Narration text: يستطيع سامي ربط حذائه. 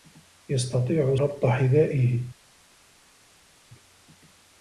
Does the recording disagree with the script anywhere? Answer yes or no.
yes